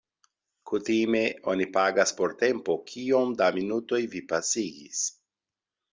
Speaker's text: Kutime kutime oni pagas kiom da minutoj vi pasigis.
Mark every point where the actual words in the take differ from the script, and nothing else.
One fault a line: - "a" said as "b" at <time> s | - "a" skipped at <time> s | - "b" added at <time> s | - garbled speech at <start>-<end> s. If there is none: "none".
- "kutime" skipped at 1.2 s
- "por tempo" added at 2.2 s